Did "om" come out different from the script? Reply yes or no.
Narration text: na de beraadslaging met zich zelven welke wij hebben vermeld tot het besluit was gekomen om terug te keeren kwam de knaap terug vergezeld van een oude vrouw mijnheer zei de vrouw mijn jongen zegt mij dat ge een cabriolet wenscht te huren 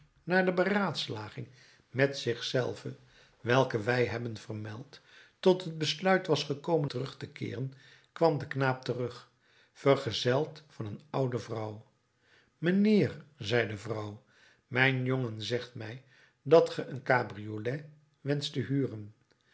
yes